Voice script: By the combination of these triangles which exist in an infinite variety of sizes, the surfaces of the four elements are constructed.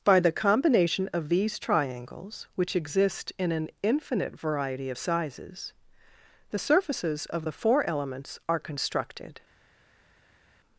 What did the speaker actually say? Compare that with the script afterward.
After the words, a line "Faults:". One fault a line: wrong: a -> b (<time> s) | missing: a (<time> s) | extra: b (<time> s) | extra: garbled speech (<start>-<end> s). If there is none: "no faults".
By the combination of these triangles which exist in an infinite variety of sizes, the surfaces of the four elements are constructed.
Faults:
no faults